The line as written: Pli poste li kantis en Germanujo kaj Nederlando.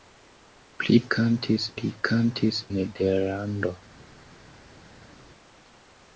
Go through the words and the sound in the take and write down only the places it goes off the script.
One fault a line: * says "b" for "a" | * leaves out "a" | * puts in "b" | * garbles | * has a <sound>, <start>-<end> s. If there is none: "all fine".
* says "kantis" for "poste"
* leaves out "en Germanujo kaj"